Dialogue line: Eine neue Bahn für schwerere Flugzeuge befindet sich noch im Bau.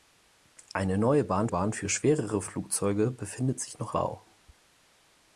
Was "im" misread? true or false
true